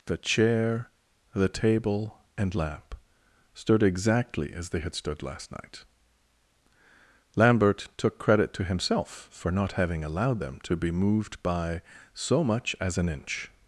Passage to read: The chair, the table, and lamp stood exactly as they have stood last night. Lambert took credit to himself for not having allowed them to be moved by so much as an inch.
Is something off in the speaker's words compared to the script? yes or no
yes